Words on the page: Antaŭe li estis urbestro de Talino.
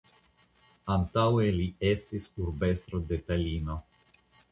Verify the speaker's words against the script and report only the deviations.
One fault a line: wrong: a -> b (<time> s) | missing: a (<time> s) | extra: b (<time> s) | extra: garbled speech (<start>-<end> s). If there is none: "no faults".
no faults